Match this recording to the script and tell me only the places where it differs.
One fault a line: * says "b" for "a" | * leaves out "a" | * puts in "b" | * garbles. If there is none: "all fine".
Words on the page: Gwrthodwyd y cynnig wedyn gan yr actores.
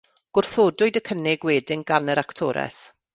all fine